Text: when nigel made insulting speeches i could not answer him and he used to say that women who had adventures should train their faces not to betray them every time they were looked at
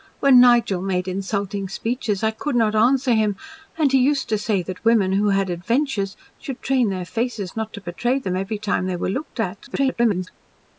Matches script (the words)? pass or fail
fail